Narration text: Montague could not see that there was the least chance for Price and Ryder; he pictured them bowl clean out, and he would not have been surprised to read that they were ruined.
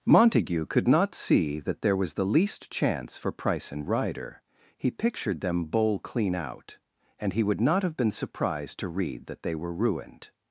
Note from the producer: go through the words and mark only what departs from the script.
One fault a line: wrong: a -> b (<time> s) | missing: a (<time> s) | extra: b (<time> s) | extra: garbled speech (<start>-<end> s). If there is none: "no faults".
no faults